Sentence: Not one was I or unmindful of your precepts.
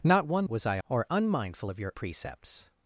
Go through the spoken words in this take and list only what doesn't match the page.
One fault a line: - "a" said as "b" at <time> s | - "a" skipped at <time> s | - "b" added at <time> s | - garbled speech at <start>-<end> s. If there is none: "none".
none